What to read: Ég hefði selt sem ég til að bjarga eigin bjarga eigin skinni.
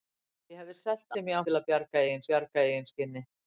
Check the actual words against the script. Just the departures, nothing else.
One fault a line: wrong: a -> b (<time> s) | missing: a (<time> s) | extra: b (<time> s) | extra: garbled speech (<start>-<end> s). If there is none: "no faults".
no faults